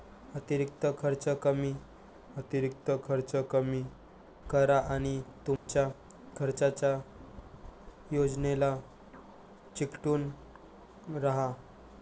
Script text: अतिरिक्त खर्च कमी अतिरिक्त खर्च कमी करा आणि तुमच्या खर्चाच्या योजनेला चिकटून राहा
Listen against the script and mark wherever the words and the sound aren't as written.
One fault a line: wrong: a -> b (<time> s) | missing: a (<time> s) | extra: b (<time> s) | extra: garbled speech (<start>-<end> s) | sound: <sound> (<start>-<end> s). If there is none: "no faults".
sound: dropout (5.6-5.7 s)